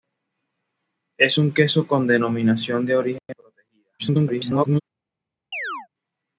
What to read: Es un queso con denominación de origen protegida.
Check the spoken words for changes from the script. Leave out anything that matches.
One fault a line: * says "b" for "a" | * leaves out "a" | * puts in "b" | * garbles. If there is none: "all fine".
* garbles